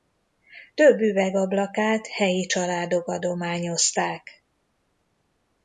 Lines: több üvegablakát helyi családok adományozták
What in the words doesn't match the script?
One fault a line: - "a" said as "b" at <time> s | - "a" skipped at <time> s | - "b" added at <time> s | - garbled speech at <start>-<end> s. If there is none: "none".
none